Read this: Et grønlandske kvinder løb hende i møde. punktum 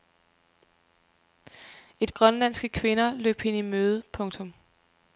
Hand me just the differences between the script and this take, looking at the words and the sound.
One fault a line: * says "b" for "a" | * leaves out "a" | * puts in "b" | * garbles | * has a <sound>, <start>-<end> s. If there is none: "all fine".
all fine